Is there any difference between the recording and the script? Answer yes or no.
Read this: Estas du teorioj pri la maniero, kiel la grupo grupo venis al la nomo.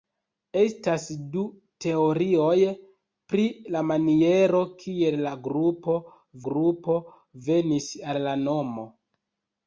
no